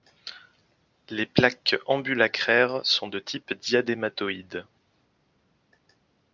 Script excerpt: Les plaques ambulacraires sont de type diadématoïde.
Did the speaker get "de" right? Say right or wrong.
right